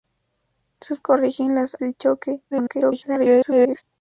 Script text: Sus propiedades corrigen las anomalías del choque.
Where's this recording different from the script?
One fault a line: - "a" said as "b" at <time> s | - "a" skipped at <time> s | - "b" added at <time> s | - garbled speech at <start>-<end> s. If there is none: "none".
- "propiedades" skipped at 1.0 s
- "anomalías" skipped at 1.8 s
- garbled speech at 2.5-3.8 s